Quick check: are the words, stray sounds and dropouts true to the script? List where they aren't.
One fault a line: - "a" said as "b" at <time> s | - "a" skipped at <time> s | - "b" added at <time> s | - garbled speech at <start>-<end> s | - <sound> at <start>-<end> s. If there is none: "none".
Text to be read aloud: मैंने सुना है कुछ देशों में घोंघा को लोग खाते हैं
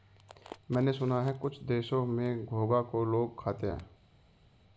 none